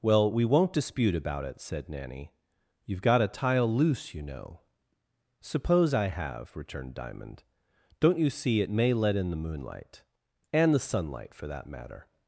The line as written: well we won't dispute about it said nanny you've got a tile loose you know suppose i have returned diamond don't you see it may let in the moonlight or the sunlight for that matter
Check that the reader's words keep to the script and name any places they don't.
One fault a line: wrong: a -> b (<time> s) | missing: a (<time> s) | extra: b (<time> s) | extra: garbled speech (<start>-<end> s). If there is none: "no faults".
wrong: or -> and (10.5 s)